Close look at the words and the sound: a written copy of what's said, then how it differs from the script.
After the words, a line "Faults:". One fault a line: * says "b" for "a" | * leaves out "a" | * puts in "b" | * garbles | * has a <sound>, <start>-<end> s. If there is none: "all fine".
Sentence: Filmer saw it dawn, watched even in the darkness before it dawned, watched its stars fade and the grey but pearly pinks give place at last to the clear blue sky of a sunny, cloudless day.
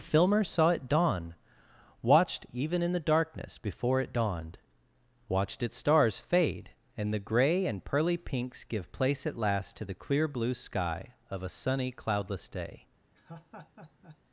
Filmer saw it dawn, watched even in the darkness before it dawned, watched its stars fade and the grey and pearly pinks give place at last to the clear blue sky of a sunny, cloudless day.
Faults:
* says "and" for "but"
* has a laugh, 13.1-14.2 s